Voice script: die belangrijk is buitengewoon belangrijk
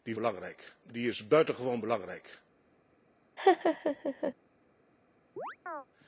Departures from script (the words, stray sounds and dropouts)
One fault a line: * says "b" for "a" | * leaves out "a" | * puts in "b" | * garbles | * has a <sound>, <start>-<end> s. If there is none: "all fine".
* has a laugh, 3.4-4.3 s
* has a chirp, 5.4-5.9 s